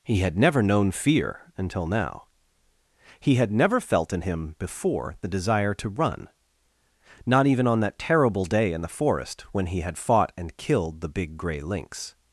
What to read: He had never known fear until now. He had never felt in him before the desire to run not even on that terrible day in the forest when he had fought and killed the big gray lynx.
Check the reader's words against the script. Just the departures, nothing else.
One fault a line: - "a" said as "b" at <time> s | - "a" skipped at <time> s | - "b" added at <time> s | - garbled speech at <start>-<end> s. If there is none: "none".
none